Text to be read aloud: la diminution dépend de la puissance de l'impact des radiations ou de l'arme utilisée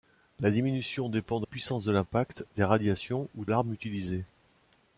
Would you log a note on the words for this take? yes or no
yes